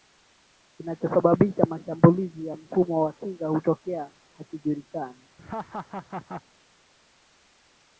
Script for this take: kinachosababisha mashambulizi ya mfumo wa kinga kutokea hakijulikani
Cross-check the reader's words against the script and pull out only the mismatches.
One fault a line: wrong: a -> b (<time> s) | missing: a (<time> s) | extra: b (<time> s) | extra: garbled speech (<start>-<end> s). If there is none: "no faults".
no faults